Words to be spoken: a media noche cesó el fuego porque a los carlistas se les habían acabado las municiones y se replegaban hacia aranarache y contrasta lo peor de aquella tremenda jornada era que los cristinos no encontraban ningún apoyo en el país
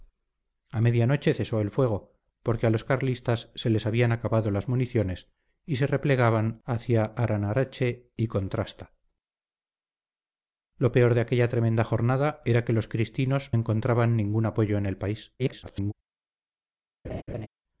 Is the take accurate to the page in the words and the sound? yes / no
no